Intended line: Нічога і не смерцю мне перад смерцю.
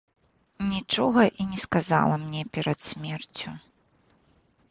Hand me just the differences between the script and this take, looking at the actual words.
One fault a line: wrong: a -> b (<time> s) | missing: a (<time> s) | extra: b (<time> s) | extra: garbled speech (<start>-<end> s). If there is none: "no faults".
wrong: смерцю -> сказала (1.6 s)